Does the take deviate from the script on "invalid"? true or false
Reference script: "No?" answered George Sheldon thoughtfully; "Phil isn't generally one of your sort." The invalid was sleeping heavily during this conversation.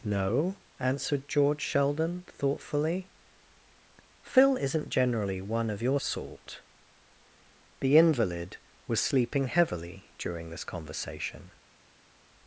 false